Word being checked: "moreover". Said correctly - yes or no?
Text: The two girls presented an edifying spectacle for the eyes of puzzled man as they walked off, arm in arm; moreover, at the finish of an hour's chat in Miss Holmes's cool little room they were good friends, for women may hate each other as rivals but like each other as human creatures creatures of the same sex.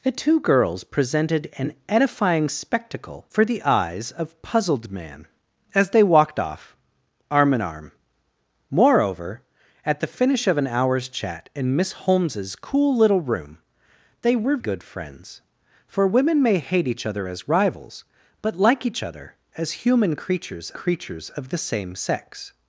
yes